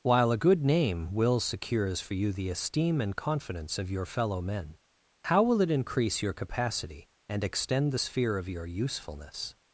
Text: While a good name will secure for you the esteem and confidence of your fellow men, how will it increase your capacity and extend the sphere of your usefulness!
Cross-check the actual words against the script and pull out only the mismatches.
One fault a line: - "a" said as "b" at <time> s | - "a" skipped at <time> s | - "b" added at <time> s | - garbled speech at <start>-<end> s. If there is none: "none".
- "secure" said as "secures" at 1.4 s